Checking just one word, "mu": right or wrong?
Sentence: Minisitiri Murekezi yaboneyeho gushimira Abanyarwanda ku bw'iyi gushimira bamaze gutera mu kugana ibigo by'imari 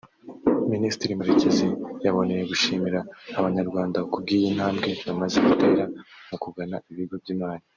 right